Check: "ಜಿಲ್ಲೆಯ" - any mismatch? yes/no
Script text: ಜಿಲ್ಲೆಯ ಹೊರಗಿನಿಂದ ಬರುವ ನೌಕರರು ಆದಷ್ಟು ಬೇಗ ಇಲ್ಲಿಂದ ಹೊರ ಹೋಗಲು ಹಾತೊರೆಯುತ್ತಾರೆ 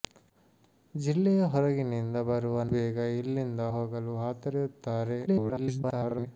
no